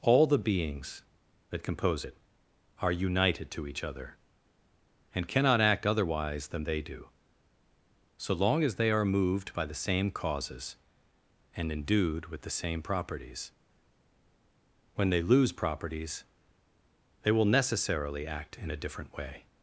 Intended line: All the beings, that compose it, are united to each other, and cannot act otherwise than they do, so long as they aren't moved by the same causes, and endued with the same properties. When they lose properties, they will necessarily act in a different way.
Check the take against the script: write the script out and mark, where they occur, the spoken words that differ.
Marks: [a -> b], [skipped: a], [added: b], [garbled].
All the beings, that compose it, are united to each other, and cannot act otherwise than they do, so long as they [aren't -> are] moved by the same causes, and endued with the same properties. When they lose properties, they will necessarily act in a different way.